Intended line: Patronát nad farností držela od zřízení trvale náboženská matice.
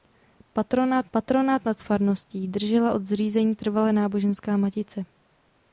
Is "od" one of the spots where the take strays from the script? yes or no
no